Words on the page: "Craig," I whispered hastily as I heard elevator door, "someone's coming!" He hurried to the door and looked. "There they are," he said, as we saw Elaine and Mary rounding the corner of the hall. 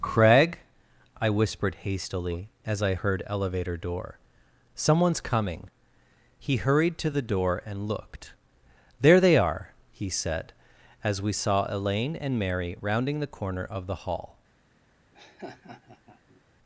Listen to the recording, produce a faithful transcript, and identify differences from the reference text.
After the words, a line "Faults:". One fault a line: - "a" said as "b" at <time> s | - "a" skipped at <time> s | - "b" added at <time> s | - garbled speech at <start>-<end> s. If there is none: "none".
"Craig," I whispered hastily as I heard elevator door, "someone's coming!" He hurried to the door and looked. "There they are," he said, as we saw Elaine and Mary rounding the corner of the hall.
Faults:
none